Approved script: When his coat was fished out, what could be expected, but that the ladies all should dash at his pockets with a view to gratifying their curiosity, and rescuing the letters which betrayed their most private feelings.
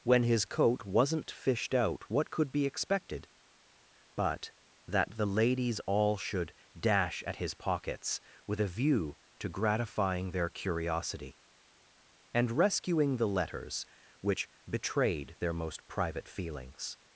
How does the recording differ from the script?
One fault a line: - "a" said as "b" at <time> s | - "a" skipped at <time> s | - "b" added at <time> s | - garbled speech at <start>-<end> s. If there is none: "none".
- "was" said as "wasn't" at 0.8 s